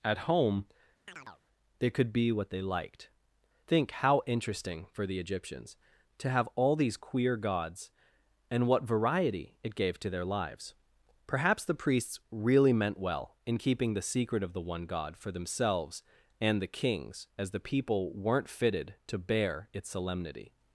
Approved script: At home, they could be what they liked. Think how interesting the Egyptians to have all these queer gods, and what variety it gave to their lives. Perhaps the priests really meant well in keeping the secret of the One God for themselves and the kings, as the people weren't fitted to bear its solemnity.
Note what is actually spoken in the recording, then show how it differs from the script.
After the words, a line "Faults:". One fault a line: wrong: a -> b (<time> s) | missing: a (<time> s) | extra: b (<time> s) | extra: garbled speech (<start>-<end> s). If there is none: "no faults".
At home, they could be what they liked. Think how interesting for the Egyptians to have all these queer gods, and what variety it gave to their lives. Perhaps the priests really meant well in keeping the secret of the One God for themselves and the kings, as the people weren't fitted to bear its solemnity.
Faults:
extra: for (4.9 s)